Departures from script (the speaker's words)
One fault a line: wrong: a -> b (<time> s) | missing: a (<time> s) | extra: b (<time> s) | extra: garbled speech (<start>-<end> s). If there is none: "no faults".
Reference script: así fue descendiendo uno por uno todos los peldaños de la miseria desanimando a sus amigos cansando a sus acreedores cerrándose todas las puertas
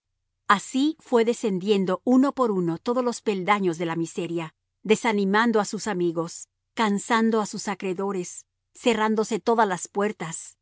no faults